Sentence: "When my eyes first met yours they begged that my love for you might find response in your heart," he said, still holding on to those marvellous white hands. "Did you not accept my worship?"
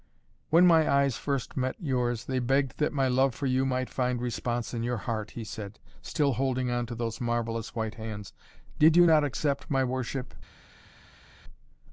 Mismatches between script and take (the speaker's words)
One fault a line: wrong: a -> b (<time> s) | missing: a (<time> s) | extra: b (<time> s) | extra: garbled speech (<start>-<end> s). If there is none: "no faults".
no faults